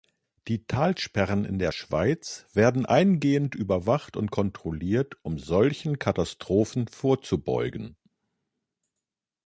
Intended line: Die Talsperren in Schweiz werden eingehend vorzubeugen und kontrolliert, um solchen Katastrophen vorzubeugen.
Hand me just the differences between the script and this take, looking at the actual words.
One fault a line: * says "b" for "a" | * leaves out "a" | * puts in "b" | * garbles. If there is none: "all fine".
* puts in "der"
* says "überwacht" for "vorzubeugen"